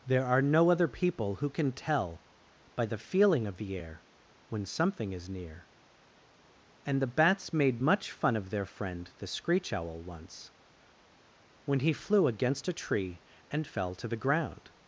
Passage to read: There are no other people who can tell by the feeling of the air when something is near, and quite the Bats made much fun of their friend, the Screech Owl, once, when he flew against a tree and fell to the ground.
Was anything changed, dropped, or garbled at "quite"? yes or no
yes